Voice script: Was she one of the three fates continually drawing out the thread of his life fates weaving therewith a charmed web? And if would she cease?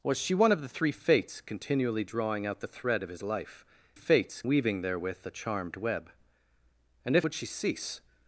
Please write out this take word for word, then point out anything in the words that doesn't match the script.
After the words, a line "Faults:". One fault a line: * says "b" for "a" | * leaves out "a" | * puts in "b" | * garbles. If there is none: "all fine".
Was she one of the three fates continually drawing out the thread of his life fates weaving therewith a charmed web? And if would she cease?
Faults:
all fine